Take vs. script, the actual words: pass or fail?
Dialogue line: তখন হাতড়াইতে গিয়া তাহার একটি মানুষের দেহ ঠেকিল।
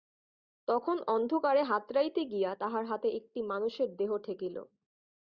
fail